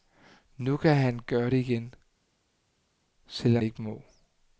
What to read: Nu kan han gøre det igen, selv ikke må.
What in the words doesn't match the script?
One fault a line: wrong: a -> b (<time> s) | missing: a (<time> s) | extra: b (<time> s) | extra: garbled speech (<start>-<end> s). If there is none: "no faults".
no faults